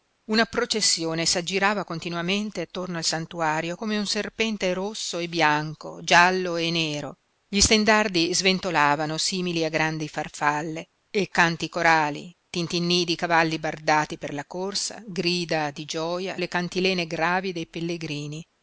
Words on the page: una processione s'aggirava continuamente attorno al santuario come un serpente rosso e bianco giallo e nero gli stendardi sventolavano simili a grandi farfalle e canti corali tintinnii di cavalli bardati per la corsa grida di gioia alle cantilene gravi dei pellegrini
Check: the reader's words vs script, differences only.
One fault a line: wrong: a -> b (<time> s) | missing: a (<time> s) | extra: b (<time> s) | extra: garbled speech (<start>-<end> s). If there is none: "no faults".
no faults